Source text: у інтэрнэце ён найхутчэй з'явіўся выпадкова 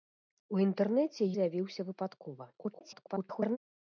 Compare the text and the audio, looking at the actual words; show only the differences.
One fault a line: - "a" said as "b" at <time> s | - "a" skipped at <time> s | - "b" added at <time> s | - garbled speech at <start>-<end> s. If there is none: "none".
- "ён найхутчэй" skipped at 1.3 s
- garbled speech at 2.5-3.6 s